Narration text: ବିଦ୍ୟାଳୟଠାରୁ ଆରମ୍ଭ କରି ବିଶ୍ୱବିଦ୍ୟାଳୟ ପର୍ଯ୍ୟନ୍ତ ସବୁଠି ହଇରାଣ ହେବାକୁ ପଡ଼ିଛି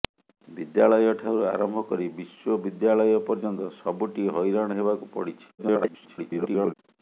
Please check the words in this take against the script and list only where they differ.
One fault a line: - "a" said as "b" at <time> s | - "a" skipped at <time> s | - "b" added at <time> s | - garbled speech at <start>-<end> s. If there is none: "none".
- garbled speech at 5.6-6.7 s